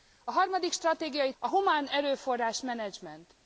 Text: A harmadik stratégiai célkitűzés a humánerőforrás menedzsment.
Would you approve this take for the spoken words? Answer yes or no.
no